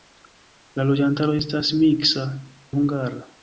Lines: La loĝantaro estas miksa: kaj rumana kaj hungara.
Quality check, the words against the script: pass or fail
fail